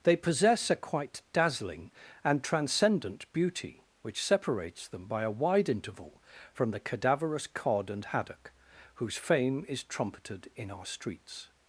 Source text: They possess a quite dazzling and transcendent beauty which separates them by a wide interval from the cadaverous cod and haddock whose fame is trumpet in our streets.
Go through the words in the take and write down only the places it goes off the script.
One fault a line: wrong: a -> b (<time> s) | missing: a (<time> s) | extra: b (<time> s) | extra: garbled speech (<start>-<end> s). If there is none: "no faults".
wrong: trumpet -> trumpeted (9.8 s)